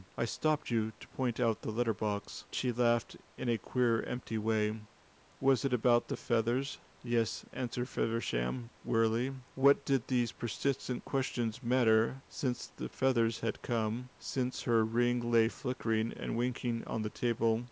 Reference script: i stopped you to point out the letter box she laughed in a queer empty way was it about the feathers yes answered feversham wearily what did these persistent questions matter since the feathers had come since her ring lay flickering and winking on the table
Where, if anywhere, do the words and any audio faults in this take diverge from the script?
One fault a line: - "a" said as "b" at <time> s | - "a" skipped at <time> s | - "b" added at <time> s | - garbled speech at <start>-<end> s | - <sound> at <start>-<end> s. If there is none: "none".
none